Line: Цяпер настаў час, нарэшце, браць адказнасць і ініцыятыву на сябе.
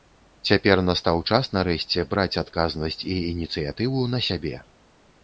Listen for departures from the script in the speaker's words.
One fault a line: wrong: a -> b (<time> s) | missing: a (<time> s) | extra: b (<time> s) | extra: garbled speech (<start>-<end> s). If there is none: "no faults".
no faults